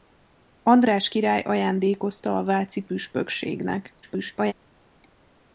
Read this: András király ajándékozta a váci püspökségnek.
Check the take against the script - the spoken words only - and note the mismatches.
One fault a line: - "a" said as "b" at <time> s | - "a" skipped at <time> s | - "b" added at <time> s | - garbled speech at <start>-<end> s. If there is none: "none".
- garbled speech at 4.0-4.5 s